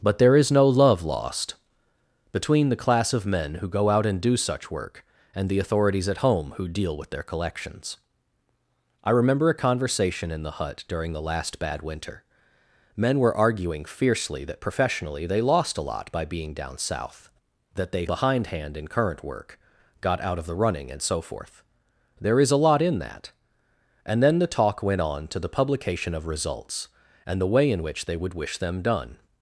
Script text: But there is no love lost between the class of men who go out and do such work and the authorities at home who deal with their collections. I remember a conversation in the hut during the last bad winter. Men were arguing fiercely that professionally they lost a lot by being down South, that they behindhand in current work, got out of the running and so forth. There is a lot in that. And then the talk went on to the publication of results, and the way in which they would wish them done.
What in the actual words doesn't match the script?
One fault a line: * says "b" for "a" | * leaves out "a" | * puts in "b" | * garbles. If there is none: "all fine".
all fine